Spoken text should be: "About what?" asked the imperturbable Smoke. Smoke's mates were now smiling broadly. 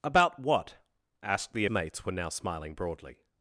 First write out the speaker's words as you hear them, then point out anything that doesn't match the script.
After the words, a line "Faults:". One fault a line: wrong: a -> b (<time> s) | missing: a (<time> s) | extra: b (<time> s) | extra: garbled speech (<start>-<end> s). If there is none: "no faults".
"About what?" asked the mates were now smiling broadly.
Faults:
missing: imperturbable Smoke Smoke's (1.6 s)